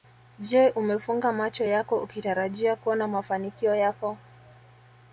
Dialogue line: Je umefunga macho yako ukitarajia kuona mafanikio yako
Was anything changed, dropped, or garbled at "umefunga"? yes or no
no